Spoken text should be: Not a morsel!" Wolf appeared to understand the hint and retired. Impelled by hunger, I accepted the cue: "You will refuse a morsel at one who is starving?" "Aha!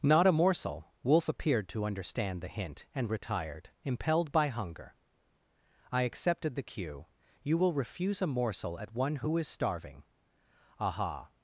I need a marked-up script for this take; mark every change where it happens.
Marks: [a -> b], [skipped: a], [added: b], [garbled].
Not a morsel!" Wolf appeared to understand the hint and retired. Impelled by hunger, I accepted the cue: "You will refuse a morsel at one who is starving?" "Aha!